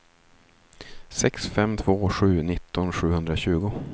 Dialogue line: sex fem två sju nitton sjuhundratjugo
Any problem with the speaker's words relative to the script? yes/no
no